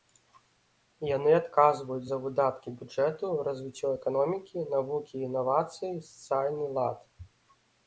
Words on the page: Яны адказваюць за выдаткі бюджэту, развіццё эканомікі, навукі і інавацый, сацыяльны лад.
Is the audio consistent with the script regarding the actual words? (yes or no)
yes